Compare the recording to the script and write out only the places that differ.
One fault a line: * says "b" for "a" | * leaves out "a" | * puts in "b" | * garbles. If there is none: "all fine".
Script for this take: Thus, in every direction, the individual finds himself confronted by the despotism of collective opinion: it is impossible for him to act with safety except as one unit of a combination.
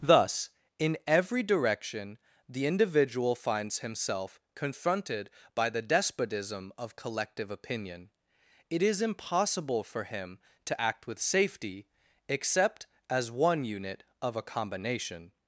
all fine